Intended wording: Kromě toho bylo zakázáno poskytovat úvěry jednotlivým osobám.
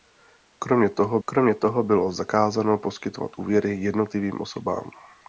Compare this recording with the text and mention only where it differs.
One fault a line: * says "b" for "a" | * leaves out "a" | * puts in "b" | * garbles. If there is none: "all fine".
* puts in "kromě toho"